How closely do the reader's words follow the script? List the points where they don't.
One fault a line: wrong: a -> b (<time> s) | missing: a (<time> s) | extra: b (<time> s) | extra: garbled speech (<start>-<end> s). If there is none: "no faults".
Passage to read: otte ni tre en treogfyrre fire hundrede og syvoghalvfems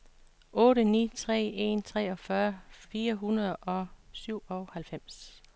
no faults